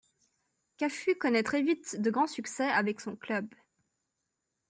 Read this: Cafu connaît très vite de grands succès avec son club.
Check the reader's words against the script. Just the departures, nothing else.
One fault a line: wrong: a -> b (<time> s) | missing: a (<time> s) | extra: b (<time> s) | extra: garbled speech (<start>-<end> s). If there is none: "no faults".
no faults